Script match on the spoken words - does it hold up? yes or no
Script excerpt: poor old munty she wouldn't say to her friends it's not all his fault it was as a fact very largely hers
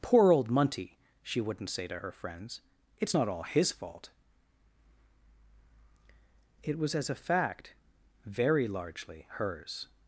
yes